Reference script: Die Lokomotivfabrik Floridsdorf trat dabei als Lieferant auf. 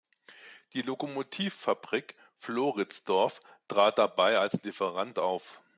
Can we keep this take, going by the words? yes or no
yes